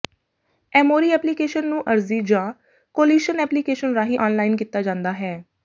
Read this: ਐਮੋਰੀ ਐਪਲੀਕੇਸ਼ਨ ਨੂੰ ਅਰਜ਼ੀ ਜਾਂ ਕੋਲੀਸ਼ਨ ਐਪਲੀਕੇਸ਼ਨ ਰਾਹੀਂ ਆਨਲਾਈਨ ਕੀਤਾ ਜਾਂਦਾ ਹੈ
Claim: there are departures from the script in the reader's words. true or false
false